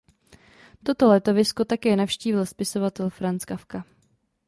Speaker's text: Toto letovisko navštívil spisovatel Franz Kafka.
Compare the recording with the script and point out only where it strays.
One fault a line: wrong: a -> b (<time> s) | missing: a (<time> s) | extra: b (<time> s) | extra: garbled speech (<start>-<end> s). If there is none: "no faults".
extra: také (1.6 s)